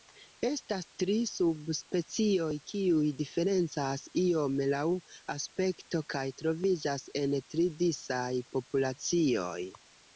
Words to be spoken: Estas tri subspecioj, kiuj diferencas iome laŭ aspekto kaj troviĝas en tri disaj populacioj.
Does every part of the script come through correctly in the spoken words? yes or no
yes